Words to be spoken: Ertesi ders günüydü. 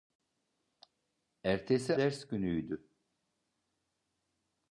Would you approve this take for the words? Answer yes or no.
yes